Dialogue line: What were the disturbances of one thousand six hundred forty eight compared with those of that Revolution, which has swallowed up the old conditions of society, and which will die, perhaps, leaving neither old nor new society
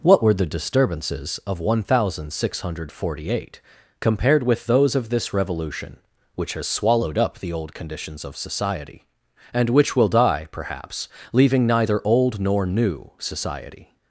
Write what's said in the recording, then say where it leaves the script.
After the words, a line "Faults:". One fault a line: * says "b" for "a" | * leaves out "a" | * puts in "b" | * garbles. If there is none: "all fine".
What were the disturbances of one thousand six hundred forty eight compared with those of this Revolution, which has swallowed up the old conditions of society, and which will die, perhaps, leaving neither old nor new society
Faults:
* says "this" for "that"